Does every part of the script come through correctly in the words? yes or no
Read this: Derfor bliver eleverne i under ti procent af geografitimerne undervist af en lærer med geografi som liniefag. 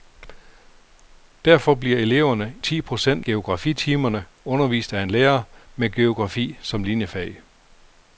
no